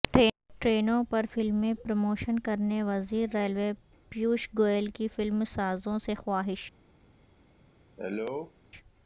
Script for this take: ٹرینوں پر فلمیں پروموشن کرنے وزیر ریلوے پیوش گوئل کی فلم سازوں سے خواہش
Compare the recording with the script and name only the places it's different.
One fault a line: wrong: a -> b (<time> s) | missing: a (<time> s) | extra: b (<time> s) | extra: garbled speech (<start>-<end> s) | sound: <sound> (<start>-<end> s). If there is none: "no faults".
sound: cough (8.0-8.5 s)